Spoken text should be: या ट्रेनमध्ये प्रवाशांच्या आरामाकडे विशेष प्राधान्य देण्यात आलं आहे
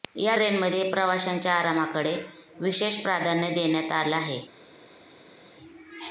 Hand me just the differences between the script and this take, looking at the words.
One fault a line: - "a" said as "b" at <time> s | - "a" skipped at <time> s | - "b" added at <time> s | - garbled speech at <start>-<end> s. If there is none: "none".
none